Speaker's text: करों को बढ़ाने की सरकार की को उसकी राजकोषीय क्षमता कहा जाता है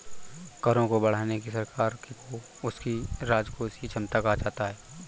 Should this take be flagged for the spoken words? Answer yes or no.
no